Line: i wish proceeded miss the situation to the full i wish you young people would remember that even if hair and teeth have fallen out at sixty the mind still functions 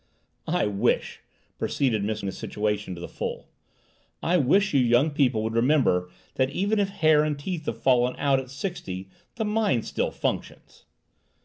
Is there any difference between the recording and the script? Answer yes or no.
no